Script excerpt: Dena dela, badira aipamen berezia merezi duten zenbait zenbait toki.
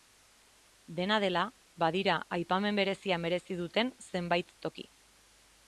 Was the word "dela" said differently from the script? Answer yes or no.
no